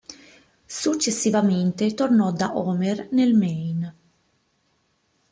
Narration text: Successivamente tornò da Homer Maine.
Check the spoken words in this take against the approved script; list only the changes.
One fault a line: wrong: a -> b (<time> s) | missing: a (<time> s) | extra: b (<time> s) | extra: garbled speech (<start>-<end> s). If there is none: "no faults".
extra: nel (3.1 s)